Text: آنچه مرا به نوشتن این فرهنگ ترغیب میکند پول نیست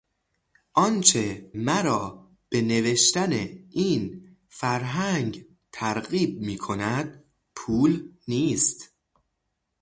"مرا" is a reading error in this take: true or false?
false